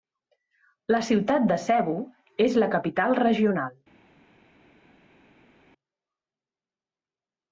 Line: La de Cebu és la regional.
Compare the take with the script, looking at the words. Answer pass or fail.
fail